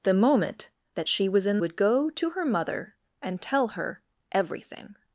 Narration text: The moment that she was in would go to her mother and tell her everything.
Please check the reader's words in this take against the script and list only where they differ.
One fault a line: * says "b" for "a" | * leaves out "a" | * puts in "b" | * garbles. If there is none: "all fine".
all fine